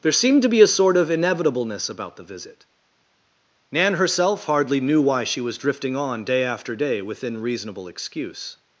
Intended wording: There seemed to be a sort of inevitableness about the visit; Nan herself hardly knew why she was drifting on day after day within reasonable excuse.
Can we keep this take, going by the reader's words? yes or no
yes